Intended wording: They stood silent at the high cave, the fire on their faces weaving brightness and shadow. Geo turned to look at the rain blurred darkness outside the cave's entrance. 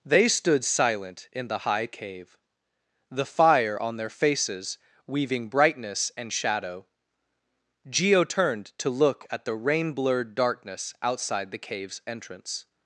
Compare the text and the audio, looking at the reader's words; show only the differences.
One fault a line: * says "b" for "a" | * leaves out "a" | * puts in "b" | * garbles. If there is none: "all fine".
* says "in" for "at"